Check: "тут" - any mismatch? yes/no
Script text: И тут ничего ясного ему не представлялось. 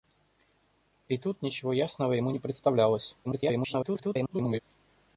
no